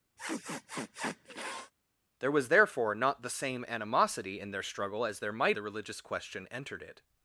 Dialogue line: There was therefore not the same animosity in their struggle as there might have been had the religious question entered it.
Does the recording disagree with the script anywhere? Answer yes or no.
yes